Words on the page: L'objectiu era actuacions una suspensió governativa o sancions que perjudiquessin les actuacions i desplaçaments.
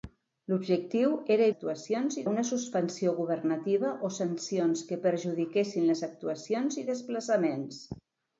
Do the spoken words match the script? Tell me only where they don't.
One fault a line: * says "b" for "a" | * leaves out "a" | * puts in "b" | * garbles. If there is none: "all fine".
all fine